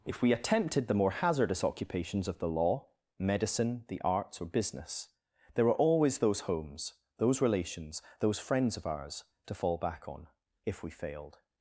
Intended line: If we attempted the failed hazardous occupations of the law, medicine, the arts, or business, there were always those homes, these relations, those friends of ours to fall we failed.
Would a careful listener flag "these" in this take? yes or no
yes